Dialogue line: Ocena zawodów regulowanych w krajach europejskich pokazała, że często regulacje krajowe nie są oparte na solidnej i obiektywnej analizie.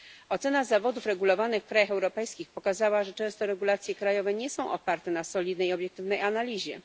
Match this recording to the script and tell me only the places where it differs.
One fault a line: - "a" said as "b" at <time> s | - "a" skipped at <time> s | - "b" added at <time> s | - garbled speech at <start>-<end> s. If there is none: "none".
none